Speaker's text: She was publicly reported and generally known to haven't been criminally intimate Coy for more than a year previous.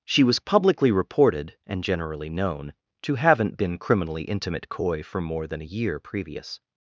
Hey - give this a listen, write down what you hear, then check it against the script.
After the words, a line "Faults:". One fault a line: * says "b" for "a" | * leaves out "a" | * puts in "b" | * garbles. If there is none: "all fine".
She was publicly reported and generally known to haven't been criminally intimate Coy for more than a year previous.
Faults:
all fine